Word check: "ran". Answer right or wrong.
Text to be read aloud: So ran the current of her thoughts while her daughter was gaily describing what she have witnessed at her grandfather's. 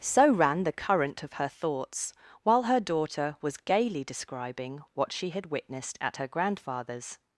right